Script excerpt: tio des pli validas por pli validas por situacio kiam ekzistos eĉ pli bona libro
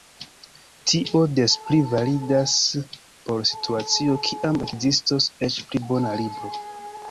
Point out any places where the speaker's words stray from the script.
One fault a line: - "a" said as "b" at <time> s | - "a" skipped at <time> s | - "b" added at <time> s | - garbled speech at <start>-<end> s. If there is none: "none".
- "pli validas por" skipped at 3.5 s